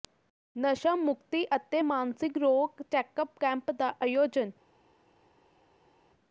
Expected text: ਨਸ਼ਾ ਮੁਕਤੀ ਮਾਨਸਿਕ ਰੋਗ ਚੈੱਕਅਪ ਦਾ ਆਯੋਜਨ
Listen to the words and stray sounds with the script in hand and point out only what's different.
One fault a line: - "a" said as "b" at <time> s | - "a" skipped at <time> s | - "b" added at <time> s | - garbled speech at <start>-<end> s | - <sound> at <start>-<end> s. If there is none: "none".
- "ਅਤੇ" added at 1.5 s
- "ਕੈਂਪ" added at 3.4 s